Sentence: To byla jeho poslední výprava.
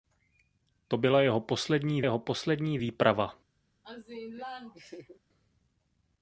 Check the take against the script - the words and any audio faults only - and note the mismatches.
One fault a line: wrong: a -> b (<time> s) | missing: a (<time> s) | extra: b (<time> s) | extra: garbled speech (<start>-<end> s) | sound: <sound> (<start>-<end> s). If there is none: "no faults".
extra: jeho poslední (2.0 s)
sound: laugh (3.8-5.2 s)